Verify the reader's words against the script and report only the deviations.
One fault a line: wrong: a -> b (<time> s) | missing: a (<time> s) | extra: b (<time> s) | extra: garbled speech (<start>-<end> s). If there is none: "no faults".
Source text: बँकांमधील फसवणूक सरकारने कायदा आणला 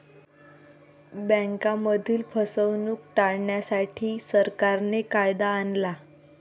extra: टाळण्यासाठी (3.2 s)